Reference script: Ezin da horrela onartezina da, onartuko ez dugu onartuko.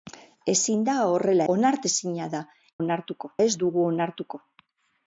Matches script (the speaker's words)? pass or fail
pass